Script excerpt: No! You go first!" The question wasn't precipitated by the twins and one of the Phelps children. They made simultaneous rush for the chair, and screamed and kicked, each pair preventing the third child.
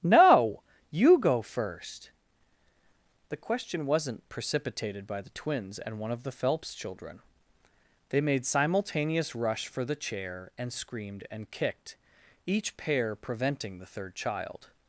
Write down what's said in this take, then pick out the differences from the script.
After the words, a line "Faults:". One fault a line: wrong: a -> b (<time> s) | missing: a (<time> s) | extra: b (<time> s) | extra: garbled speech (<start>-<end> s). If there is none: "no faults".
No! You go first!" The question wasn't precipitated by the twins and one of the Phelps children. They made simultaneous rush for the chair, and screamed and kicked, each pair preventing the third child.
Faults:
no faults